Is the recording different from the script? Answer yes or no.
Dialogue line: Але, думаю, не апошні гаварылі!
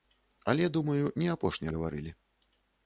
no